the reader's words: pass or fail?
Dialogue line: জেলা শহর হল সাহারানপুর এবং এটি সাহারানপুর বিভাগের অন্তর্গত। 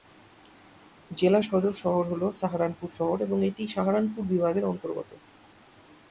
fail